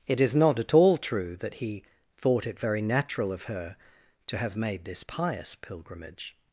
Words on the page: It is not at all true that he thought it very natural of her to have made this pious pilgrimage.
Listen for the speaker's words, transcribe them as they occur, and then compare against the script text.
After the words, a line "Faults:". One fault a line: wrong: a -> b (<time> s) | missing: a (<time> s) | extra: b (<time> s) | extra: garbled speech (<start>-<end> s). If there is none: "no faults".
It is not at all true that he thought it very natural of her to have made this pious pilgrimage.
Faults:
no faults